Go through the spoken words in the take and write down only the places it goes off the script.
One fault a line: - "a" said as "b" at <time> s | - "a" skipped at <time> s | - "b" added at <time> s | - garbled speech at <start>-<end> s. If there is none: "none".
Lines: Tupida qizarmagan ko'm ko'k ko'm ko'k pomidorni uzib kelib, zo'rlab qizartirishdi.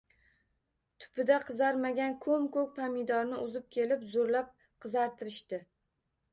- "ko'm ko'k" skipped at 2.7 s